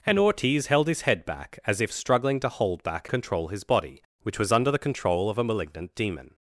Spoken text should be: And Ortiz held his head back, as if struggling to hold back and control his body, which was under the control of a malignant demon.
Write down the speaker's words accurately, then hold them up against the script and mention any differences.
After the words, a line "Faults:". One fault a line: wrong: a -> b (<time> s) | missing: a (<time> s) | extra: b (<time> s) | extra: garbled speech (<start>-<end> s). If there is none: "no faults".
And Ortiz held his head back, as if struggling to hold back control his body, which was under the control of a malignant demon.
Faults:
missing: and (3.1 s)